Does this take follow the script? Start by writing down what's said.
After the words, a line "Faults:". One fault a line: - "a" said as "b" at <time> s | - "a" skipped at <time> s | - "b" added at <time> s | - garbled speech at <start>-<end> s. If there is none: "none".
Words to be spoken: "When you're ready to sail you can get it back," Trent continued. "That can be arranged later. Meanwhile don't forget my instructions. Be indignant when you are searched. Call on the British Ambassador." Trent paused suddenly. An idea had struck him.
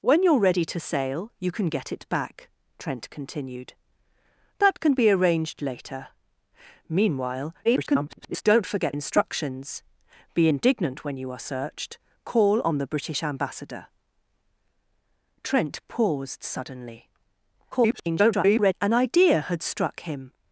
"When you're ready to sail you can get it back," Trent continued. "That can be arranged later. Meanwhile [garbled] don't forget instructions. Be indignant when you are searched. Call on the British Ambassador." Trent paused suddenly. [garbled] An idea had struck him.
Faults:
- garbled speech at 7.6-8.4 s
- "my" skipped at 8.9 s
- garbled speech at 17.7-18.7 s